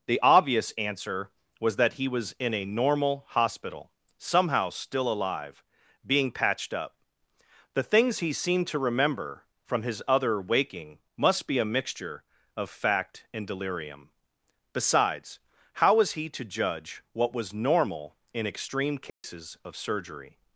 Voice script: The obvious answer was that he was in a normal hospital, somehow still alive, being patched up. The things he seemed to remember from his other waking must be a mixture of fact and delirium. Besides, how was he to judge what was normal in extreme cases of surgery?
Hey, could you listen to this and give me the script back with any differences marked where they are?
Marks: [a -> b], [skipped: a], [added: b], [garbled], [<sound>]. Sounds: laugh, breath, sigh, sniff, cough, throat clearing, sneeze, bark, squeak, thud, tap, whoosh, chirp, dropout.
The obvious answer was that he was in a normal hospital, somehow still alive, being patched up. The things he seemed to remember from his other waking must be a mixture of fact and delirium. Besides, how was he to judge what was normal in extreme cases [dropout] of surgery?